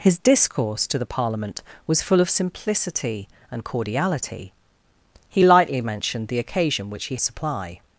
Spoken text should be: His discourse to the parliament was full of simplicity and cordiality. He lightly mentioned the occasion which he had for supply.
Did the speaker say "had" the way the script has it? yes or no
no